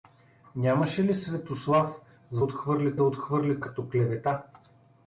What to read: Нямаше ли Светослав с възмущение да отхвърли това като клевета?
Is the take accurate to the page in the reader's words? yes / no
no